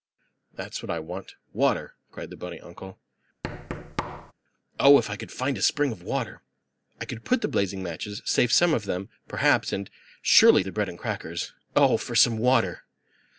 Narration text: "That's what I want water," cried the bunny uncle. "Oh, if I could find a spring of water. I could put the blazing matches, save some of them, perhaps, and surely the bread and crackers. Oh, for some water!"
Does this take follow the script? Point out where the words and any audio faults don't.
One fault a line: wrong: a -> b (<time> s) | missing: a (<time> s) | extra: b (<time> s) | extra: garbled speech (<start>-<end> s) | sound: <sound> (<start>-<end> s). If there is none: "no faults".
sound: thud (3.4-4.3 s)